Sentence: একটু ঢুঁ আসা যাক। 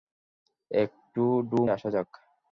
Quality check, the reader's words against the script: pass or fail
pass